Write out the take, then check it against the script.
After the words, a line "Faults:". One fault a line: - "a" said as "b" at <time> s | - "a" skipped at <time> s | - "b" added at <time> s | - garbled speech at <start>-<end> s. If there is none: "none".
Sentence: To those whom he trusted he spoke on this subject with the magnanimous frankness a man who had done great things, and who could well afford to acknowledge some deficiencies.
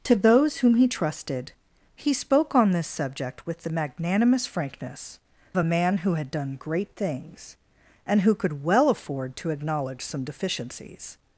To those whom he trusted he spoke on this subject with the magnanimous frankness a man who had done great things, and who could well afford to acknowledge some deficiencies.
Faults:
none